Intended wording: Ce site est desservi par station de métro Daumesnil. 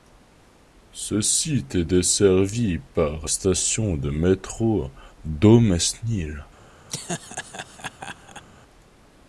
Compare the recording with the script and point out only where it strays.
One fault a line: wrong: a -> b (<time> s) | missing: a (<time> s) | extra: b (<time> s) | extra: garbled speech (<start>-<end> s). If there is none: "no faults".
no faults